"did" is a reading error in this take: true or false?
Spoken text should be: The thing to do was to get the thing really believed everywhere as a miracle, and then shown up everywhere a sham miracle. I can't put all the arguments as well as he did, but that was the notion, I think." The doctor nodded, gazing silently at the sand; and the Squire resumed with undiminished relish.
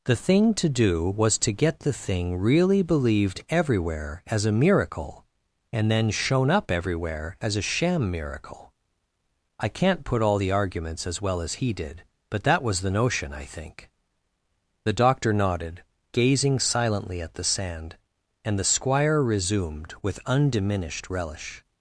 false